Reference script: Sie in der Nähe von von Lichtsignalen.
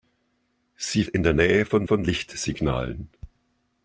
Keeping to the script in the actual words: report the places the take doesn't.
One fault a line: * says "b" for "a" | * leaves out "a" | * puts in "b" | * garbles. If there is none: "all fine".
all fine